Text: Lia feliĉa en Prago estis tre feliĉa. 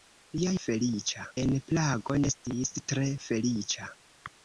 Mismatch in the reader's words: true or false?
false